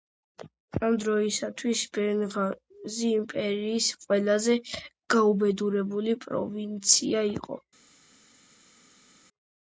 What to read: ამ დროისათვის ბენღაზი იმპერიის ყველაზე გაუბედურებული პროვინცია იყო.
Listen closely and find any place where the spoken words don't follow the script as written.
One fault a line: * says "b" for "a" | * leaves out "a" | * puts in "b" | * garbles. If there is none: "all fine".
all fine